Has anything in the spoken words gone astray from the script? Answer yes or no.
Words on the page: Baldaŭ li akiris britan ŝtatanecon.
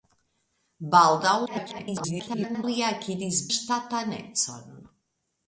yes